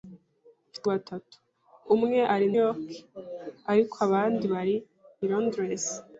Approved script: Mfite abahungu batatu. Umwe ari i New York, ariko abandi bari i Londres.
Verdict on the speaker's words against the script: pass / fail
fail